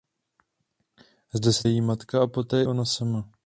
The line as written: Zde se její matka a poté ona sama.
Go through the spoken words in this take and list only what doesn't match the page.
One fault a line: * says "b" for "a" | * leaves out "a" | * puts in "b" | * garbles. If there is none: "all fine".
all fine